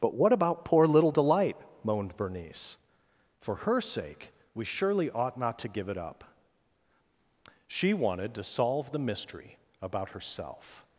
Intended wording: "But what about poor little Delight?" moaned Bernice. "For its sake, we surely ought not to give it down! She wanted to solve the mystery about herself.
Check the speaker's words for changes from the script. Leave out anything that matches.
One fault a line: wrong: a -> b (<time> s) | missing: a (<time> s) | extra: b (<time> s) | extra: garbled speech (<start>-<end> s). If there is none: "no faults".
wrong: its -> her (3.6 s)
wrong: down -> up (6.0 s)